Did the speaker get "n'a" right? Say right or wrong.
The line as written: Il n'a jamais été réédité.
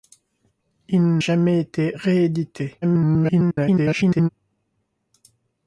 wrong